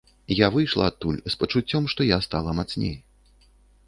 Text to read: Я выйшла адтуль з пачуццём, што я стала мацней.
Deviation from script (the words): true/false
false